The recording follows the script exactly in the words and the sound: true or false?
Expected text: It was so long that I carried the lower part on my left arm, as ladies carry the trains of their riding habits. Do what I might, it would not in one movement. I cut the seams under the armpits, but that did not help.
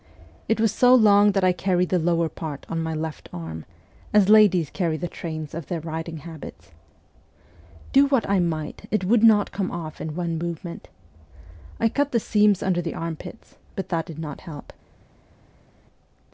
false